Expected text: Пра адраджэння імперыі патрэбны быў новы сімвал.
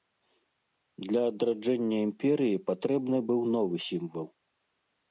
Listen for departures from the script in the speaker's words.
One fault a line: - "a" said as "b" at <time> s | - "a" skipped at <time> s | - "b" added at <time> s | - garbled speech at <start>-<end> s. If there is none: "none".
- "Пра" said as "Для" at 1.1 s